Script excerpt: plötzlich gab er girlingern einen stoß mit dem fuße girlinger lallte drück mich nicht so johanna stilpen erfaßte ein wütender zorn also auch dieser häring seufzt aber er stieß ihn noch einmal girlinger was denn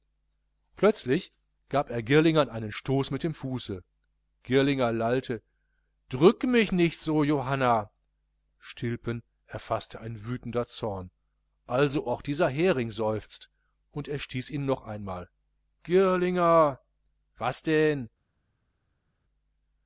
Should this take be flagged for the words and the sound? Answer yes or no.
yes